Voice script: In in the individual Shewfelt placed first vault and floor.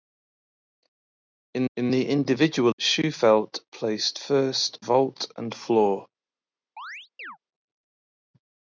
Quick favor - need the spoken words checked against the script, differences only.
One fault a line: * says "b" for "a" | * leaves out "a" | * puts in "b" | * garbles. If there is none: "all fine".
all fine